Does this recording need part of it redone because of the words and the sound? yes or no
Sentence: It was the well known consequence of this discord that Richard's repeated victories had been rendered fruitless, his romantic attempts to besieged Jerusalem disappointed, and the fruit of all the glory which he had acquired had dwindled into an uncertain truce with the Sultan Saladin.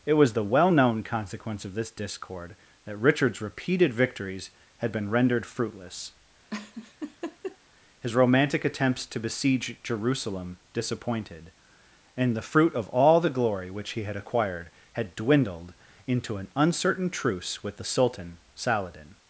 yes